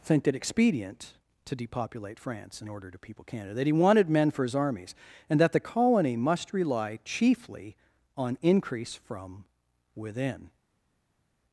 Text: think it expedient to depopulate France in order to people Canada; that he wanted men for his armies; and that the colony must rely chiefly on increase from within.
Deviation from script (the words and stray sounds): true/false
false